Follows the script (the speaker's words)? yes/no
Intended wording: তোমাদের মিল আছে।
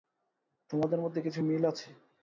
no